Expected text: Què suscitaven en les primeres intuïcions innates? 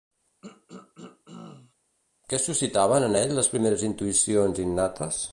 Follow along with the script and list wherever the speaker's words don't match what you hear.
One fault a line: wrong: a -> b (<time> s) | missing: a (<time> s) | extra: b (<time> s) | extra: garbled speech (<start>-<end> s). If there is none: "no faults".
extra: ell (3.2 s)